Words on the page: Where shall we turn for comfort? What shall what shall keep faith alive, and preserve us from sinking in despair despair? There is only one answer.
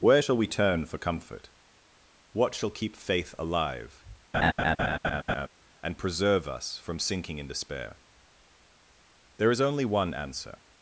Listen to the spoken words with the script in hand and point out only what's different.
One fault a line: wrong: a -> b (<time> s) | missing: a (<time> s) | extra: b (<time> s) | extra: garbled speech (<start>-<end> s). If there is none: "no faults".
missing: what shall (2.7 s)
missing: despair (8.0 s)